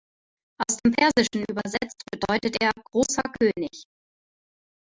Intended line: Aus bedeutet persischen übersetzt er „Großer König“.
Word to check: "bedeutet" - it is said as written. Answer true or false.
false